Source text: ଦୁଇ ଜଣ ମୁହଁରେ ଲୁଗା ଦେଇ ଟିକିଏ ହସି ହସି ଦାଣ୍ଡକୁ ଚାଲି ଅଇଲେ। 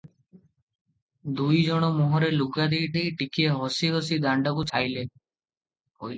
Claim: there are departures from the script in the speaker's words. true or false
true